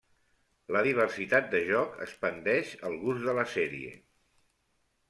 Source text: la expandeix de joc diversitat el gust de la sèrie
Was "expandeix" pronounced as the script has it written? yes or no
no